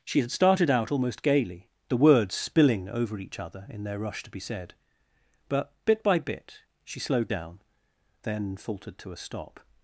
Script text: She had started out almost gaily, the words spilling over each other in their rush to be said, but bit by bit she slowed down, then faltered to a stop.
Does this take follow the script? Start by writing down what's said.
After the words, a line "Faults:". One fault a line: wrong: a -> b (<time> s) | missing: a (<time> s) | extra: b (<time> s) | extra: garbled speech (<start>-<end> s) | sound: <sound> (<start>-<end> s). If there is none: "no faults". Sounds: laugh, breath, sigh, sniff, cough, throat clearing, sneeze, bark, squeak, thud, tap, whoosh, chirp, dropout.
She had started out almost gaily, the words spilling over each other in their rush to be said, but bit by bit she slowed down, then faltered to a stop.
Faults:
no faults